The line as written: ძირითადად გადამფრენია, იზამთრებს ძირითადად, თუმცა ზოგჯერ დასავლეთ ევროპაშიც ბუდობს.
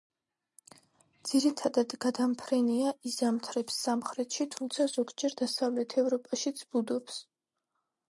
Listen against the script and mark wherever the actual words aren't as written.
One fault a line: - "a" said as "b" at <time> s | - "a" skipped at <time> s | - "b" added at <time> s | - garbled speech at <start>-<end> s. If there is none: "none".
- "ძირითადად" said as "სამხრეთში" at 3.9 s